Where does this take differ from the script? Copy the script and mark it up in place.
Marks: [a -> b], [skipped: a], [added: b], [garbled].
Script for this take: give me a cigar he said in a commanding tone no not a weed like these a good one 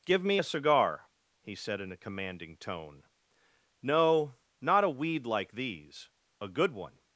give me a cigar he said in a commanding tone no not a weed like these a good one